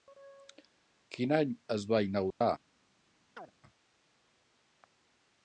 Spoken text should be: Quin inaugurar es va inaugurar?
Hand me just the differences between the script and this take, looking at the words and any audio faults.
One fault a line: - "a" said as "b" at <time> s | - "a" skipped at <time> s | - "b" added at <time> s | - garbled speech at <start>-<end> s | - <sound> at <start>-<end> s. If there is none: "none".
- "inaugurar" said as "any" at 1.4 s
- dropout at 2.3-2.4 s
- chirp at 3.4-3.5 s